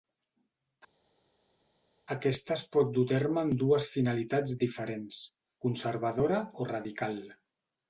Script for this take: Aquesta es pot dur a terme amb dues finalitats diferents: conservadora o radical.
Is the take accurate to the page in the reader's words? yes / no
yes